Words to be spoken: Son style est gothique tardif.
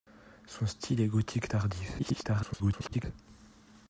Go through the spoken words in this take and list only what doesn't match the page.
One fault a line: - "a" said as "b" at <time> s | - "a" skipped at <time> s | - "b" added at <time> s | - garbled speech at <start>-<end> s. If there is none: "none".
- garbled speech at 2.0-3.0 s